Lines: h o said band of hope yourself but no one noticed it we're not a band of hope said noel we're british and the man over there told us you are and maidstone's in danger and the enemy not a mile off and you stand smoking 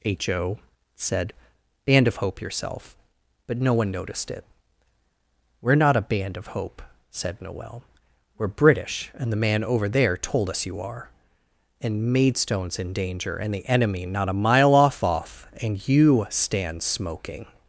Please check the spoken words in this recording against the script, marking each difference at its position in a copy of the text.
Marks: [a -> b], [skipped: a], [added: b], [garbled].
h o said band of hope yourself but no one noticed it we're not a band of hope said noel we're british and the man over there told us you are and maidstone's in danger and the enemy not a mile off [added: off] and you stand smoking